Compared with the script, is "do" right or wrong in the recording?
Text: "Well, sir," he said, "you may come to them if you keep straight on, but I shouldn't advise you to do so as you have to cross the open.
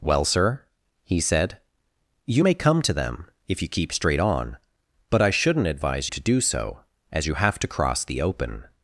right